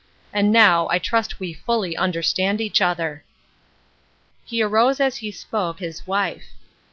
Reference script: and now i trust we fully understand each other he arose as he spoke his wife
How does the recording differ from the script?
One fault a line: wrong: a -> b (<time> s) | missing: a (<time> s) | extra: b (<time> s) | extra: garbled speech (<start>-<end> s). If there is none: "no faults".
no faults